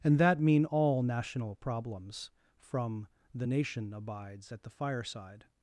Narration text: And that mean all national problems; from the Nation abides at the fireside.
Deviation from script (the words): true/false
false